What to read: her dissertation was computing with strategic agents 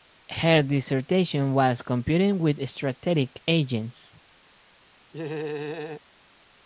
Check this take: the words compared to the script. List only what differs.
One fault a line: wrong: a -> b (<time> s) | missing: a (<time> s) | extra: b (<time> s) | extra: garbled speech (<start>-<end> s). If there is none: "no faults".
no faults